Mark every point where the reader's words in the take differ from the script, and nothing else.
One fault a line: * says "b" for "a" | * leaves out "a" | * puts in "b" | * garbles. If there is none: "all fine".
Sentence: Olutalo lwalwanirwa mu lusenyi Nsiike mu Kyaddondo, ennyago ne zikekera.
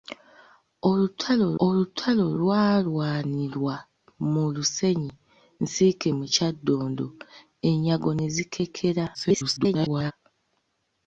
* puts in "olutalo"
* garbles